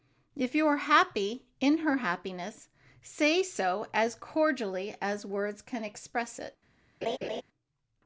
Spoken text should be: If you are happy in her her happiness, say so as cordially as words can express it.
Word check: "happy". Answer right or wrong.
right